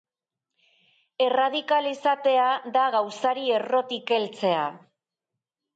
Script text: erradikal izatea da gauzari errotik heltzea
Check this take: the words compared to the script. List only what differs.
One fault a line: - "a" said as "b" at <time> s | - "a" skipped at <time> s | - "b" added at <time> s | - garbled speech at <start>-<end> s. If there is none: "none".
none